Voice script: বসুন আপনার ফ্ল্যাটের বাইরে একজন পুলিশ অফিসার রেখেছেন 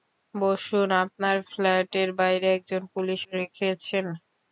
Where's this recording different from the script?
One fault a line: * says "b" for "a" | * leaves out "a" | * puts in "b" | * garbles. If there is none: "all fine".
* leaves out "অফিসার"